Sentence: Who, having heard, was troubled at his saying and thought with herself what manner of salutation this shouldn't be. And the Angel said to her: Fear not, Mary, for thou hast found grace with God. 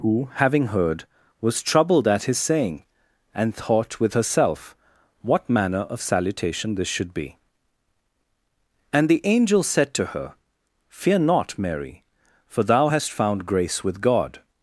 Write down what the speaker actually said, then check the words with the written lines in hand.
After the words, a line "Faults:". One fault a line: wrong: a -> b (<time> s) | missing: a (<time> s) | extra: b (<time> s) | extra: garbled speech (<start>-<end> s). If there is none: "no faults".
Who, having heard, was troubled at his saying and thought with herself what manner of salutation this should be. And the Angel said to her: Fear not, Mary, for thou hast found grace with God.
Faults:
wrong: shouldn't -> should (6.9 s)